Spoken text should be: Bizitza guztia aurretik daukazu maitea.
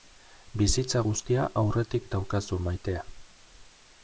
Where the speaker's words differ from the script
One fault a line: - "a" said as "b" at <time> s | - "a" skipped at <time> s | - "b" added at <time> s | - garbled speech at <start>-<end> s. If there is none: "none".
none